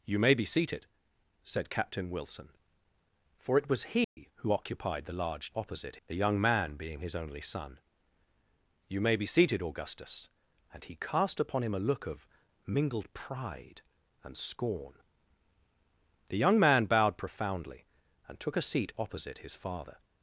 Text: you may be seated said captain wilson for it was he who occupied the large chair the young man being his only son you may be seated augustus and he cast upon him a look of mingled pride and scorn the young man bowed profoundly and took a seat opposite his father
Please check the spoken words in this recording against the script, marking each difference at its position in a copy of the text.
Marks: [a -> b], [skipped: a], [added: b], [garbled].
you may be seated said captain wilson for it was he who occupied the large [chair -> opposite] the young man being his only son you may be seated augustus and he cast upon him a look of mingled pride and scorn the young man bowed profoundly and took a seat opposite his father